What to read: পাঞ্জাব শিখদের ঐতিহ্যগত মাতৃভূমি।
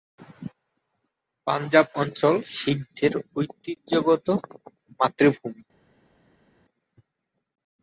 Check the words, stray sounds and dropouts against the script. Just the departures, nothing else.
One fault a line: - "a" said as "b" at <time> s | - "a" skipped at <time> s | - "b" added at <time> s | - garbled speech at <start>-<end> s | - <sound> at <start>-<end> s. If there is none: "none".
- "অঞ্চল" added at 1.9 s